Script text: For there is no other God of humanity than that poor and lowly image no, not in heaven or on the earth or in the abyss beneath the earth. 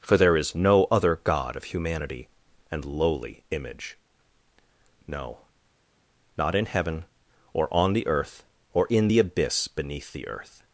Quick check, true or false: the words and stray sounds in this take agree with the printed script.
false